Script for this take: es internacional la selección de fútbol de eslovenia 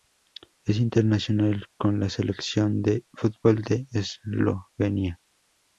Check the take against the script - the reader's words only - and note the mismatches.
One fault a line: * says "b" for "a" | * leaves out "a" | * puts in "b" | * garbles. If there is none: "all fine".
* puts in "con"